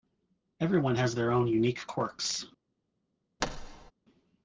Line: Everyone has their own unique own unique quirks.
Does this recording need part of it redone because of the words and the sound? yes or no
yes